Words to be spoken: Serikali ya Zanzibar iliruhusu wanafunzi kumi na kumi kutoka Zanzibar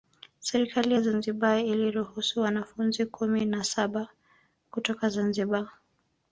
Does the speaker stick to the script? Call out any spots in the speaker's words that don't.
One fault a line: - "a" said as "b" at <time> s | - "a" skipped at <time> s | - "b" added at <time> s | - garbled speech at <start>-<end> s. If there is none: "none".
- "kumi" said as "saba" at 3.6 s